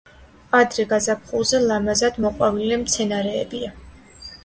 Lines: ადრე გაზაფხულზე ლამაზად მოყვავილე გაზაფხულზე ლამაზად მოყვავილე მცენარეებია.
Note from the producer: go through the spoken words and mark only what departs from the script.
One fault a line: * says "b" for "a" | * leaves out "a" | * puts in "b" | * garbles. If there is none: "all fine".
* leaves out "გაზაფხულზე ლამაზად მოყვავილე"